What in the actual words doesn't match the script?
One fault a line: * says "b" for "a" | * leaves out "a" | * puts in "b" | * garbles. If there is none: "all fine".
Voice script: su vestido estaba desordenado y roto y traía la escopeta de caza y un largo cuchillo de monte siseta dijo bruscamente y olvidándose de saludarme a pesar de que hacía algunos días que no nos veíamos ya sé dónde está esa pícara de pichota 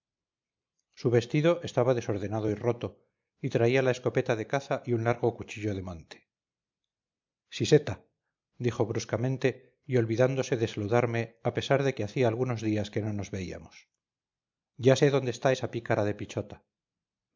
all fine